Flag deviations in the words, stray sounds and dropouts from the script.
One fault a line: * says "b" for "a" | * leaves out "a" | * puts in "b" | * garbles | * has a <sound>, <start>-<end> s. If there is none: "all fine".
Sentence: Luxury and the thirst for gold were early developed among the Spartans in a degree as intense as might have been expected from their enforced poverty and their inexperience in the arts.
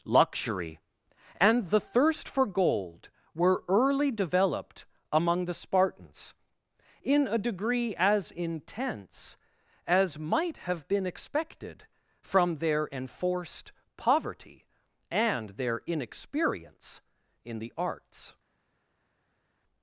all fine